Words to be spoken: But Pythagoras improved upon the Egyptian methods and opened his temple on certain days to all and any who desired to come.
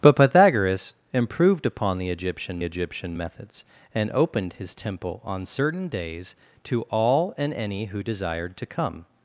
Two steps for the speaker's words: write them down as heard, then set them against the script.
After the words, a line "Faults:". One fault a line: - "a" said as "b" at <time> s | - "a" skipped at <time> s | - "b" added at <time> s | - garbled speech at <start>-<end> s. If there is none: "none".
But Pythagoras improved upon the Egyptian Egyptian methods and opened his temple on certain days to all and any who desired to come.
Faults:
- "Egyptian" added at 2.6 s